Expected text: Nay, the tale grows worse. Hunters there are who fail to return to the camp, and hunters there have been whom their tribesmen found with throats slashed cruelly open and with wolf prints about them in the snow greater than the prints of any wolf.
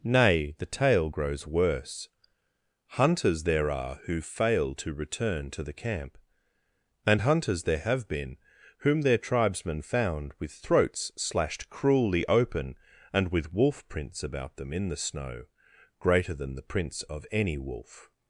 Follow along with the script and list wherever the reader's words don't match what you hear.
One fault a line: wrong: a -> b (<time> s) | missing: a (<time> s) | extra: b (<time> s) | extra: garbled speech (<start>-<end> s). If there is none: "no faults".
no faults